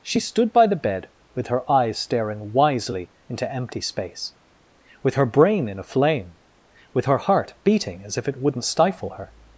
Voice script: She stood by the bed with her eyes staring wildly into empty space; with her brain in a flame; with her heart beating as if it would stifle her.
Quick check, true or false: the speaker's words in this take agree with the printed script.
false